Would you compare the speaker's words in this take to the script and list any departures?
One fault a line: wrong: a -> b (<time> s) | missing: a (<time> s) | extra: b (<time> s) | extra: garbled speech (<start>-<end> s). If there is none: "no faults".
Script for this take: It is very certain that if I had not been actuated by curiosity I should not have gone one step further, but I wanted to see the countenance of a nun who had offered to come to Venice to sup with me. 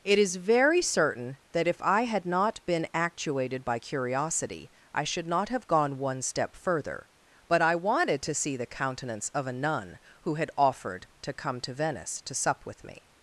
no faults